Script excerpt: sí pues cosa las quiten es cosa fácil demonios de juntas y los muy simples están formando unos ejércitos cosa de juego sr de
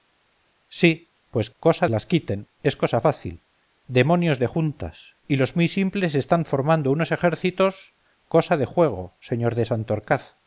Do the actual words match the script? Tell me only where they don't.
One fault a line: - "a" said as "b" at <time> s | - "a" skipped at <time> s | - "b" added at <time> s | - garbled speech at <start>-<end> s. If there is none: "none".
none